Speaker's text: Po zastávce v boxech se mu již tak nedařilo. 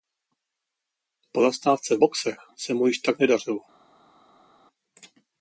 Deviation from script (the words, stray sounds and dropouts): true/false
false